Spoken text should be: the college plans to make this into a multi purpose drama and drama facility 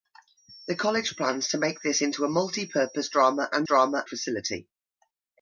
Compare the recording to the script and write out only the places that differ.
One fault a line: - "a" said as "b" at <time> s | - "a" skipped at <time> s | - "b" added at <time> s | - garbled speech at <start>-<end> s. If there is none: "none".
none